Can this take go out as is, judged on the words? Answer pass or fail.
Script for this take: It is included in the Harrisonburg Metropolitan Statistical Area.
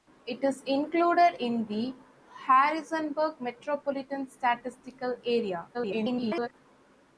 fail